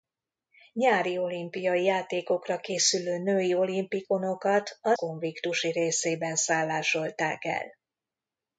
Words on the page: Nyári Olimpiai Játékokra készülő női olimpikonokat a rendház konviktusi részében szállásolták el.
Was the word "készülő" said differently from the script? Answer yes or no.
no